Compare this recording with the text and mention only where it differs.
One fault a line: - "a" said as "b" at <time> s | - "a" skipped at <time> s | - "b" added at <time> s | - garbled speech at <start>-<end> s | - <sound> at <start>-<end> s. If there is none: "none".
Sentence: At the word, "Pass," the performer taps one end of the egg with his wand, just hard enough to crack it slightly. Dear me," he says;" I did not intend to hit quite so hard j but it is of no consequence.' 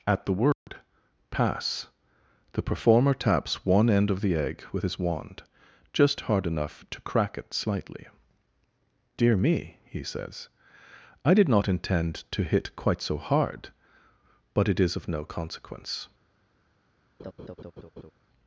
- dropout at 0.5-0.7 s
- "j" skipped at 13.7 s
- laugh at 17.2-18.1 s